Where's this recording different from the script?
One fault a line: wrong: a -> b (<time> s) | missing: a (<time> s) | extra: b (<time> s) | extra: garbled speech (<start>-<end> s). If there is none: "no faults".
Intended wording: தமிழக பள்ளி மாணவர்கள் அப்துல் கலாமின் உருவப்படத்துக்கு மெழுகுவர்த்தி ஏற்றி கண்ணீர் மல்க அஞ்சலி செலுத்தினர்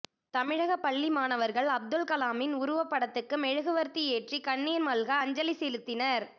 no faults